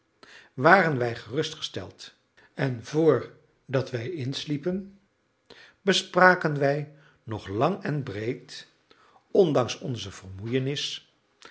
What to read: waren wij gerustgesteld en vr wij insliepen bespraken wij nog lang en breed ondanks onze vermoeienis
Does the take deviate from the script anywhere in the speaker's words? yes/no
yes